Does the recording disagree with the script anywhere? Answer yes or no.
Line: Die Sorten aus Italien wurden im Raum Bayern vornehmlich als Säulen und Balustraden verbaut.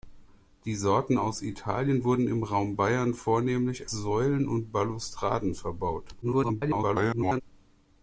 yes